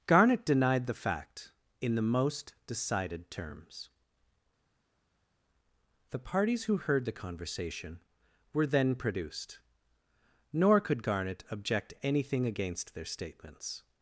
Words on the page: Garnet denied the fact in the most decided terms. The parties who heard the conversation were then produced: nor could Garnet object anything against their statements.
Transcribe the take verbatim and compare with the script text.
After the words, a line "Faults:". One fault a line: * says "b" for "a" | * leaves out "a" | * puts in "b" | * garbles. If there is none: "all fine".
Garnet denied the fact in the most decided terms. The parties who heard the conversation were then produced: nor could Garnet object anything against their statements.
Faults:
all fine